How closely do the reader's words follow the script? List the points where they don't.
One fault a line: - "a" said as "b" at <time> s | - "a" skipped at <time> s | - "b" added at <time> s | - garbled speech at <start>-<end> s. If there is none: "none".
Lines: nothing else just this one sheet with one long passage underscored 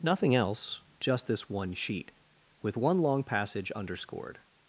none